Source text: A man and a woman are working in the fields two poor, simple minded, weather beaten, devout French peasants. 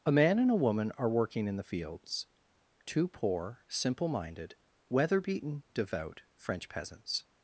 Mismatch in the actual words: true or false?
false